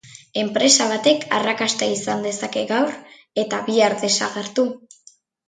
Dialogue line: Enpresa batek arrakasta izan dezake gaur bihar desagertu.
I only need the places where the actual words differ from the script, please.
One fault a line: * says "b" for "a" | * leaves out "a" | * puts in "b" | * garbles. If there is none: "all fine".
* puts in "eta"